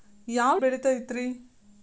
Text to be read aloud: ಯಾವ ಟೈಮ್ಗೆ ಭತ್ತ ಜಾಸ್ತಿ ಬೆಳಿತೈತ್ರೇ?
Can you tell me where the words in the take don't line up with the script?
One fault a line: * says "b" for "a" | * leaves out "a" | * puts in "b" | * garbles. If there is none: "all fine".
* leaves out "ಟೈಮ್ಗೆ ಭತ್ತ ಜಾಸ್ತಿ"